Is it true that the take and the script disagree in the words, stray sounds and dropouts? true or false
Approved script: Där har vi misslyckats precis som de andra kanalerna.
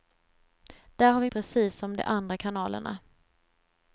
true